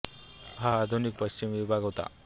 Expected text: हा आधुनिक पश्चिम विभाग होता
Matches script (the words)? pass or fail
pass